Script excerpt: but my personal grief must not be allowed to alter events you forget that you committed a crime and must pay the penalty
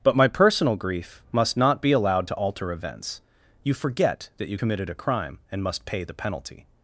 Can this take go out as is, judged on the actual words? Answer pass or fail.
pass